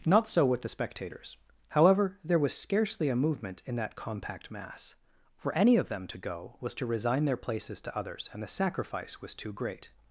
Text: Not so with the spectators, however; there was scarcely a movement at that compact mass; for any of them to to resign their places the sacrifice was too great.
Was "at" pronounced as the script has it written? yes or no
no